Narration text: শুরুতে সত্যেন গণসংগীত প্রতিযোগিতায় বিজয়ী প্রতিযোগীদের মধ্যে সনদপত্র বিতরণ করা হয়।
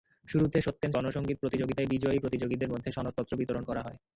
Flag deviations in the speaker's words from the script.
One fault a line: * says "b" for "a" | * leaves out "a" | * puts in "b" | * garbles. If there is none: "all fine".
all fine